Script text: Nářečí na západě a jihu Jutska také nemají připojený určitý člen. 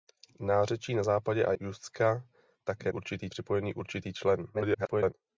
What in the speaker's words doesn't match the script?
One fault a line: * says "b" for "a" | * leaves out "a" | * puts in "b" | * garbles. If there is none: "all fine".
* leaves out "jihu"
* says "určitý" for "nemají"
* garbles